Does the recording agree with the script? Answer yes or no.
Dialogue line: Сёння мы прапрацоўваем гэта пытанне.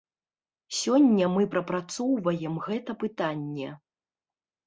yes